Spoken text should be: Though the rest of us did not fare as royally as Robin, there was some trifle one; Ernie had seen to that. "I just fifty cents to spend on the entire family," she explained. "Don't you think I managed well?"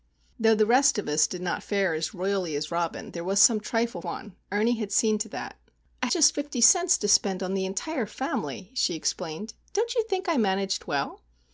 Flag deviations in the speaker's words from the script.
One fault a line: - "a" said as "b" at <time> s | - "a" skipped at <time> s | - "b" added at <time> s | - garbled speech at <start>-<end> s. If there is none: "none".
none